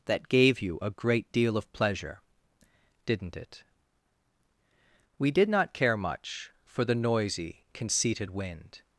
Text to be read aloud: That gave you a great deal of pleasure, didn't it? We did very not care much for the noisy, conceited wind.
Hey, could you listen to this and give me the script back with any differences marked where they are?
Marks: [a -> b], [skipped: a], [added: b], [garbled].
That gave you a great deal of pleasure, didn't it? We did [skipped: very] not care much for the noisy, conceited wind.